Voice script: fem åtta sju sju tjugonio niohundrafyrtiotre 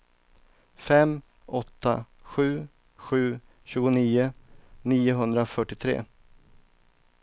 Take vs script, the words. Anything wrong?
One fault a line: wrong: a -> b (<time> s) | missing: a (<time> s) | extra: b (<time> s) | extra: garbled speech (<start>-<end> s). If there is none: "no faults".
no faults